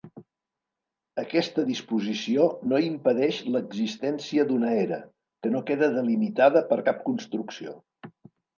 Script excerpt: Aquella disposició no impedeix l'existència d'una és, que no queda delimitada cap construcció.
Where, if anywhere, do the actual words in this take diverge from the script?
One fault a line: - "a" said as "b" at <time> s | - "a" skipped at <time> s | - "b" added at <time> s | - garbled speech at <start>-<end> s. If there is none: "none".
- "Aquella" said as "Aquesta" at 1.2 s
- "és" said as "era" at 4.9 s
- "per" added at 6.7 s